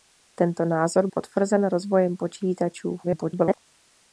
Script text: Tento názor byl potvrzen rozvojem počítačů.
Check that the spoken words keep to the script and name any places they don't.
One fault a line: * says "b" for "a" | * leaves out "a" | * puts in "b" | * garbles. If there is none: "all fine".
* leaves out "byl"
* garbles